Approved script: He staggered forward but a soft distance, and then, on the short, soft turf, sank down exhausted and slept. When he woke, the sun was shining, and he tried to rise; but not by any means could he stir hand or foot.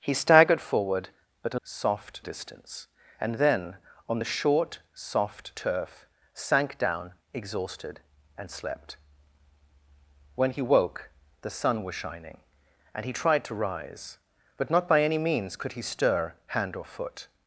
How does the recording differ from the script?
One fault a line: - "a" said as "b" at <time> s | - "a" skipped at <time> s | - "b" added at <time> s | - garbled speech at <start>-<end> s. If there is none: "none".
none